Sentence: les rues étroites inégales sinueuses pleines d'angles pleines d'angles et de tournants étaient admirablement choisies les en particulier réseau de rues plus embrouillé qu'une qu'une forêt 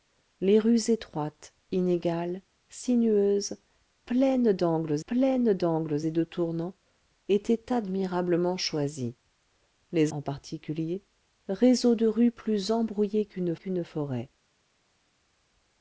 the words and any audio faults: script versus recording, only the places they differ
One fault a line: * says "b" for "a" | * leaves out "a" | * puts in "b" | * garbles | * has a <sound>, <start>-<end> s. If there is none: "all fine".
all fine